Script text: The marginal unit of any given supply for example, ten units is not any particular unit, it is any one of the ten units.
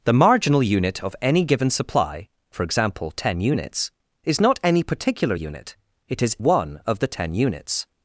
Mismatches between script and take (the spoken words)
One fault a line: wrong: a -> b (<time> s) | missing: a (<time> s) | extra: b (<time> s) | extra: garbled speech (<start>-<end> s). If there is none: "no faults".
missing: any (6.4 s)